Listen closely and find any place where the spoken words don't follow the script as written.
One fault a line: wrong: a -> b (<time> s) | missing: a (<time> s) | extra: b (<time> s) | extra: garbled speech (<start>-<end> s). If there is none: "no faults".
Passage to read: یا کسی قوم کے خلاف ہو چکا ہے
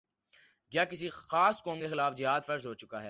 extra: خاص (1.1 s)
extra: جہاد فرض (2.1 s)